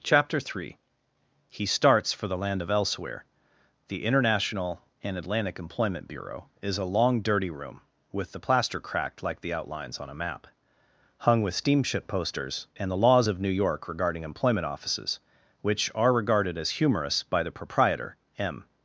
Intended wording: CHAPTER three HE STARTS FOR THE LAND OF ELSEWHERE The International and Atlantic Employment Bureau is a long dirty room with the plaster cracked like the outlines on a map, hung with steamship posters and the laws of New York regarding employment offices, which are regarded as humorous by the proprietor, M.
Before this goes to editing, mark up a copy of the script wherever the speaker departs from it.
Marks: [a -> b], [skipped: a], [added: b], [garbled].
CHAPTER three HE STARTS FOR THE LAND OF ELSEWHERE The International and Atlantic Employment Bureau is a long dirty room with the plaster cracked like the outlines on a map, hung with steamship posters and the laws of New York regarding employment offices, which are regarded as humorous by the proprietor, M.